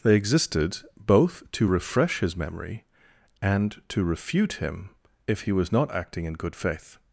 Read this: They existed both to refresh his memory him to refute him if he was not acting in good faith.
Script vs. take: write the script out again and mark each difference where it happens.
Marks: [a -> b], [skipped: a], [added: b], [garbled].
They existed both to refresh his memory [him -> and] to refute him if he was not acting in good faith.